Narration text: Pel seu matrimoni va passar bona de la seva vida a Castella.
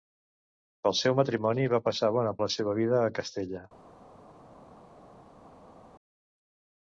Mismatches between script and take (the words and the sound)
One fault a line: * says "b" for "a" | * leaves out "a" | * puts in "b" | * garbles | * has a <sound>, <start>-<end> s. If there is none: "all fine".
all fine